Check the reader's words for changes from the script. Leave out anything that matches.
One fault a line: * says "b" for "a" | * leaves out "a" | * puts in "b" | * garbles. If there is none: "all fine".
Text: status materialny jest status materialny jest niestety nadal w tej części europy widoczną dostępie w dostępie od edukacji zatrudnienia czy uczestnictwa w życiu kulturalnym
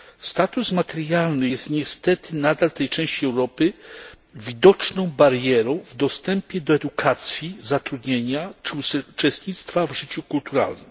* leaves out "status materialny jest"
* says "barierą" for "dostępie"
* says "do" for "od"